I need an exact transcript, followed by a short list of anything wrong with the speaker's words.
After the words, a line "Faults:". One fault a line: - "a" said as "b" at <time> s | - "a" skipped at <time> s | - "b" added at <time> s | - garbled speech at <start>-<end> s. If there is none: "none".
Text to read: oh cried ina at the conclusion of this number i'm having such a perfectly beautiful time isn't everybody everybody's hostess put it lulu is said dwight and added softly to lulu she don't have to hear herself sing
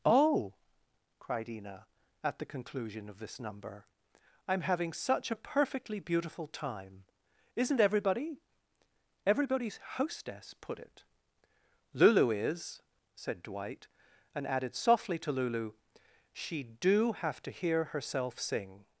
oh cried ina at the conclusion of this number i'm having such a perfectly beautiful time isn't everybody everybody's hostess put it lulu is said dwight and added softly to lulu she do have to hear herself sing
Faults:
- "don't" said as "do" at 16.6 s